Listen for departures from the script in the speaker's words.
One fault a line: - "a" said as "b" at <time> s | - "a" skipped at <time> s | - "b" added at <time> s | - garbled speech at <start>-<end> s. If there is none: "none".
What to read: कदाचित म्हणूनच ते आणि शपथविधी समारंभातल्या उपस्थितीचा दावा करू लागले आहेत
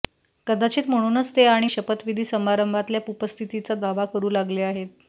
none